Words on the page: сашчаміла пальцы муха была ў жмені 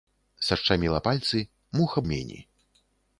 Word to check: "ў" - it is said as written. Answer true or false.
false